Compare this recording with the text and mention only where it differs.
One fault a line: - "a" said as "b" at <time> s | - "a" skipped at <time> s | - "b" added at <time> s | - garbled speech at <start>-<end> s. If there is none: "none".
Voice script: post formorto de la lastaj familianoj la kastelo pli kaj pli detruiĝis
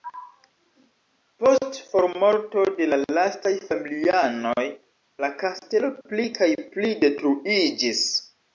none